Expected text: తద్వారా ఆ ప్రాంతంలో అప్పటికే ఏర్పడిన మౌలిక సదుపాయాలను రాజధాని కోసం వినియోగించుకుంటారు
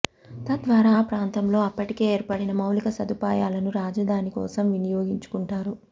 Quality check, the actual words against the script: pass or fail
pass